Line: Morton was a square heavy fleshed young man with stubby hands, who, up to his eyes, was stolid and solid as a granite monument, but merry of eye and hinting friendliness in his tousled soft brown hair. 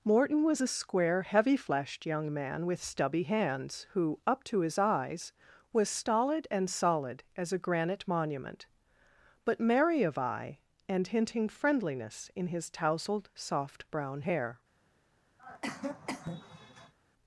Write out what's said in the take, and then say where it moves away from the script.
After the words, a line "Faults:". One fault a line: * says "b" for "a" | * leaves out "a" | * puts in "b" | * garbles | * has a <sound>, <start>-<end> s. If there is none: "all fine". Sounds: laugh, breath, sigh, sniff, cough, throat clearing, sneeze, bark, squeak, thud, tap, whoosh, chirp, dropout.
Morton was a square heavy fleshed young man with stubby hands, who, up to his eyes, was stolid and solid as a granite monument, but merry of eye and hinting friendliness in his tousled soft brown hair.
Faults:
* has a cough, 15.4-16.9 s